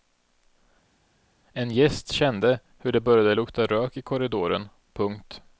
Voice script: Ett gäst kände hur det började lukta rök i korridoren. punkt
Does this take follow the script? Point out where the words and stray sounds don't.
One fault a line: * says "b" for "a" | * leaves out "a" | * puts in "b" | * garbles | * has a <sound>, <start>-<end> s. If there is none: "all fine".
* says "En" for "Ett"